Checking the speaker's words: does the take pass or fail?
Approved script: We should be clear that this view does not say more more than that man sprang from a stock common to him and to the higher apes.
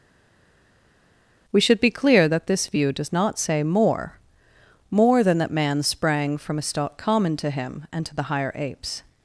pass